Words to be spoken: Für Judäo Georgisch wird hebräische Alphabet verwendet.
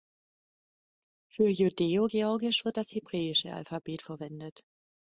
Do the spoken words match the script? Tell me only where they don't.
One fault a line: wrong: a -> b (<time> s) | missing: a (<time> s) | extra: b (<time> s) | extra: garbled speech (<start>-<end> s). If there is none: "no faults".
extra: das (2.8 s)